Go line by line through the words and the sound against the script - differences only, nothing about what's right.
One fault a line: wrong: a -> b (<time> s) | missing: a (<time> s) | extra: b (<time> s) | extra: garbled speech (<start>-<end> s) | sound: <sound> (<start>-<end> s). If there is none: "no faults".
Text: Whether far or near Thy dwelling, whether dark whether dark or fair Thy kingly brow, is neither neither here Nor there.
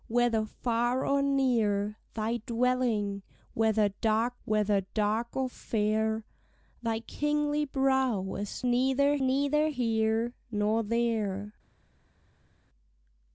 no faults